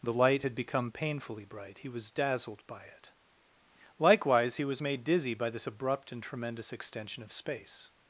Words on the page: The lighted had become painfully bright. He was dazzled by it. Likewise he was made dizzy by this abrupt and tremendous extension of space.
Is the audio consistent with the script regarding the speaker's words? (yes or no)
no